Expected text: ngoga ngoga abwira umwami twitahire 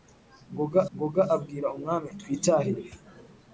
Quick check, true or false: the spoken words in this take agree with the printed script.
true